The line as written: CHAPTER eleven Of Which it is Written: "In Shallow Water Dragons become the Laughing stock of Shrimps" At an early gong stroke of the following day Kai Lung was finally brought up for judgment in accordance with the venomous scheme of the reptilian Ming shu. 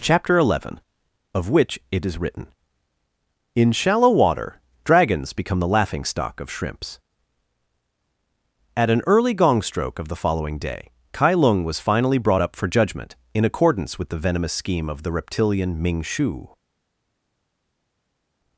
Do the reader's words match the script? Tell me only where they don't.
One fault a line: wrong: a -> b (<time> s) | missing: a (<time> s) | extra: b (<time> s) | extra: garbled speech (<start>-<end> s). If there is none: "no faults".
no faults